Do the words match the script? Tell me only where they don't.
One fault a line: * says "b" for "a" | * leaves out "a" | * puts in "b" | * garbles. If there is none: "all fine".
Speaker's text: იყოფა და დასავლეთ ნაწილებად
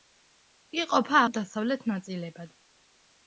all fine